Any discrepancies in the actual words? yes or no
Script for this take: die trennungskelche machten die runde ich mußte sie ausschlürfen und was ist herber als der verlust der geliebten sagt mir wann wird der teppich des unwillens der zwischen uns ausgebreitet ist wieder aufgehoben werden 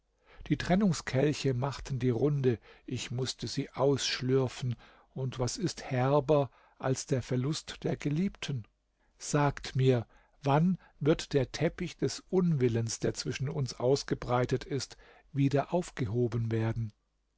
no